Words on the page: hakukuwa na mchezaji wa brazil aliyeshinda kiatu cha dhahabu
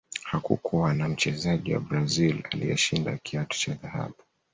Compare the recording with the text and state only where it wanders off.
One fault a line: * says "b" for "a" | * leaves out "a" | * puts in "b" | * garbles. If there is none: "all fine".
all fine